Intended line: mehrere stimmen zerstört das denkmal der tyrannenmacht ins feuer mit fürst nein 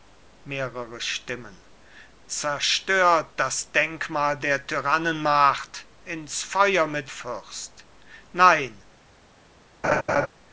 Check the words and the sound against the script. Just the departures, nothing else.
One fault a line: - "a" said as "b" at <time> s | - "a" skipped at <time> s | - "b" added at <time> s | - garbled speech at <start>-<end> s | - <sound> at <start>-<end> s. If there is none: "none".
- laugh at 9.8-10.3 s